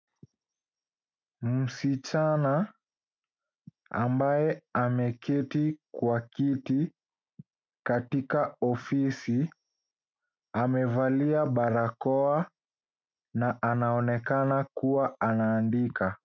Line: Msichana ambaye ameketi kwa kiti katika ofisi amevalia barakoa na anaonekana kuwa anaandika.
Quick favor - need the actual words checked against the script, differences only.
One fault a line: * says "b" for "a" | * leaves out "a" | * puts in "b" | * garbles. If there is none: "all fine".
all fine